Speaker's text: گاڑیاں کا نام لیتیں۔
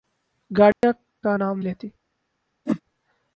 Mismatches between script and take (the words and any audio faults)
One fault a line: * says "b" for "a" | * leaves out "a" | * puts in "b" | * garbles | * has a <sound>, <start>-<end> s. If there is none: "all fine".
* has a dropout, 0.7-0.8 s
* has a whoosh, 2.7-2.8 s